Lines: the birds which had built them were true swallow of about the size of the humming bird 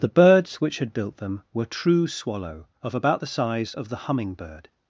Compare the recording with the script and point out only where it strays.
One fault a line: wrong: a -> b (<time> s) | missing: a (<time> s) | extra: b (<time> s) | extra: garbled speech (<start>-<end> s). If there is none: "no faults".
no faults